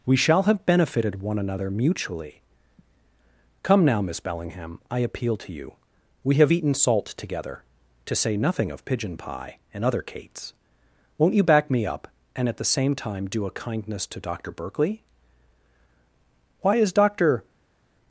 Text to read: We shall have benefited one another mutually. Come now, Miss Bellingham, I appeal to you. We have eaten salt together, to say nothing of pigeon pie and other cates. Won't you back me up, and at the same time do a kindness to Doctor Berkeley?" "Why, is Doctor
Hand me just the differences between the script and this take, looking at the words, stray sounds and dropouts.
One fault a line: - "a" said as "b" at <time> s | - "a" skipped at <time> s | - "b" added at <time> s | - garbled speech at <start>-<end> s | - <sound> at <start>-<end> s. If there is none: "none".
none